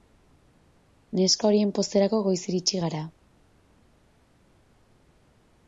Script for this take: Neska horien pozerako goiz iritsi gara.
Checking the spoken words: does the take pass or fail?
pass